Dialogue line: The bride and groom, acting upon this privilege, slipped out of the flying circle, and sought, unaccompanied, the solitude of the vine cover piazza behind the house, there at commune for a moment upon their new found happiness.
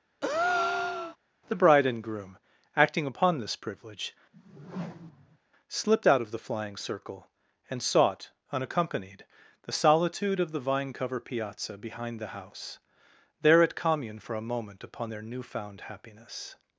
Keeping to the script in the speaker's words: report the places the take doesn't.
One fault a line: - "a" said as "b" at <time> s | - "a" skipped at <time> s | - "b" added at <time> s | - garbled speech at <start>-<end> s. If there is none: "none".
none